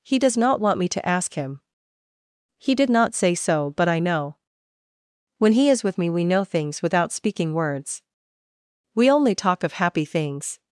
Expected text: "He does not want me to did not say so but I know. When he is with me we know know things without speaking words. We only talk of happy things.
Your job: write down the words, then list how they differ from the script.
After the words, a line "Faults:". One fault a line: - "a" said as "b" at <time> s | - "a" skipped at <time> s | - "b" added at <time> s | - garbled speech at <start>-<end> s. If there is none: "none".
"He does not want me to ask him. He did not say so but I know. When he is with me we know things without speaking words. We only talk of happy things.
Faults:
- "ask him He" added at 1.1 s
- "know" skipped at 6.4 s